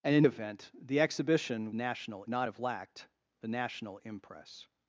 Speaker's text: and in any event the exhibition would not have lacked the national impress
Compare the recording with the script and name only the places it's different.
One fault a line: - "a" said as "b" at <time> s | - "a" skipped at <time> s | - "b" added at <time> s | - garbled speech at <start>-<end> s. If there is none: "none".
- "any" skipped at 0.3 s
- "would" said as "national" at 1.7 s